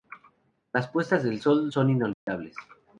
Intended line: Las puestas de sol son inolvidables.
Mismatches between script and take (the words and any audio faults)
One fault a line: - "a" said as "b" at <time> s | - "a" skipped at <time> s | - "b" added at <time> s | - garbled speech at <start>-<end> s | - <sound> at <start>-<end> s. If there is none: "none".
- dropout at 2.1-2.3 s